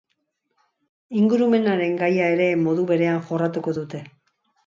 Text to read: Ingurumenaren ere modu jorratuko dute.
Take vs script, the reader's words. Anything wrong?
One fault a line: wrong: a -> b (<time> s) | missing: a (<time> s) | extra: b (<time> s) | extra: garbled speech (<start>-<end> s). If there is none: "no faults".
extra: gaia (2.0 s)
extra: berean (2.9 s)